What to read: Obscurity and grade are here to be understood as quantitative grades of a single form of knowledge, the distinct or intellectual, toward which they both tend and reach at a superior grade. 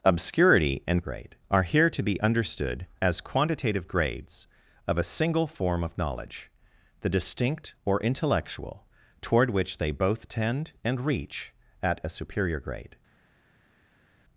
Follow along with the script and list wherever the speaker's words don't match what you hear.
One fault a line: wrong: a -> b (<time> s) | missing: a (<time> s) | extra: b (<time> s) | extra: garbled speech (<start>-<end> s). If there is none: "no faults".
no faults